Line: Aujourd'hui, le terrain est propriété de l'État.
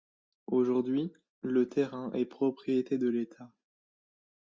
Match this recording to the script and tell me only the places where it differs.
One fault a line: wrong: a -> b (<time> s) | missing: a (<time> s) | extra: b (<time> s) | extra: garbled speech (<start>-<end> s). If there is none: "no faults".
no faults